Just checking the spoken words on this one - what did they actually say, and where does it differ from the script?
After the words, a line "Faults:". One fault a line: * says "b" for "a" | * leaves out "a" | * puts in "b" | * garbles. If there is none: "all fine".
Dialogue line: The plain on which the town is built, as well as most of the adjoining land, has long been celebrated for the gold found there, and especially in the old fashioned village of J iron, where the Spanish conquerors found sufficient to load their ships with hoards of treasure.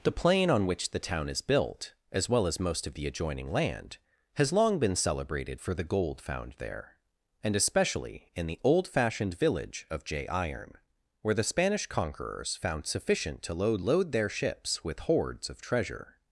The plain on which the town is built, as well as most of the adjoining land, has long been celebrated for the gold found there, and especially in the old fashioned village of J iron, where the Spanish conquerors found sufficient to load load their ships with hoards of treasure.
Faults:
* puts in "load"